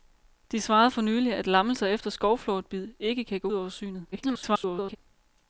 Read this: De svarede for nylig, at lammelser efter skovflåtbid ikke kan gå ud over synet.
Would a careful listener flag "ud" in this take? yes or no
yes